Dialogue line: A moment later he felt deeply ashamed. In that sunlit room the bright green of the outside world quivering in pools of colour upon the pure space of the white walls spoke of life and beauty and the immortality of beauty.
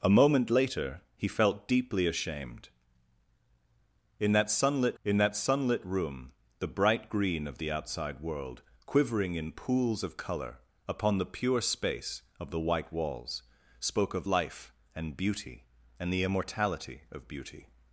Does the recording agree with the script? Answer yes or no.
no